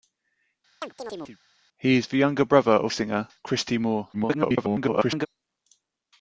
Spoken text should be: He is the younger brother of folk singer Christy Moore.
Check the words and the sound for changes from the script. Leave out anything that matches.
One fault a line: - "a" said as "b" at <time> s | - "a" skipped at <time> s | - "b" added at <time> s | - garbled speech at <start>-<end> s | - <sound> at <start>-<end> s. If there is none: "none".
- chirp at 0.8-1.4 s
- "folk" skipped at 2.9 s
- garbled speech at 4.1-5.3 s